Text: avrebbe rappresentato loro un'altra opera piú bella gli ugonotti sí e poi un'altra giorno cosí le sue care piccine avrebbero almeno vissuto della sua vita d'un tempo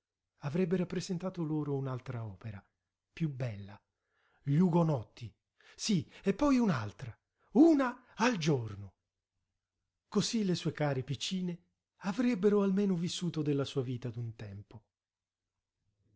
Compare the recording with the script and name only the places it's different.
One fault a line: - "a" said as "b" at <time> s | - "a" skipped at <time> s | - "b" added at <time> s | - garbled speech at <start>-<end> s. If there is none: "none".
- "una al" added at 7.5 s